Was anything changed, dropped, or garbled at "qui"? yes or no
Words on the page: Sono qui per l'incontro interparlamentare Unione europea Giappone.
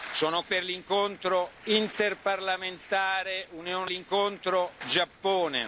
yes